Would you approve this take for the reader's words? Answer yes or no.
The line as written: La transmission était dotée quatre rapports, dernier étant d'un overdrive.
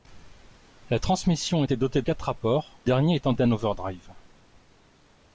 yes